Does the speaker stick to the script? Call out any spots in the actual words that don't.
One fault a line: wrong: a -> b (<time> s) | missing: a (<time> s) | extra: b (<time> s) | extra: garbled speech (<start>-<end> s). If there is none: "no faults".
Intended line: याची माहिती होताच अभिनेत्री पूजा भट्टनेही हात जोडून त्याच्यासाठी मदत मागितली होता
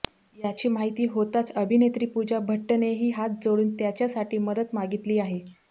wrong: होता -> आहे (5.2 s)